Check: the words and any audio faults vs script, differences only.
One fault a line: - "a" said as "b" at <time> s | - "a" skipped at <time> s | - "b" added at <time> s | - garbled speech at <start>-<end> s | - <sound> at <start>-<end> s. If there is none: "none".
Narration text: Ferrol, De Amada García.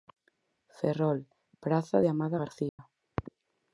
- "Praza" added at 1.6 s
- dropout at 2.7-2.8 s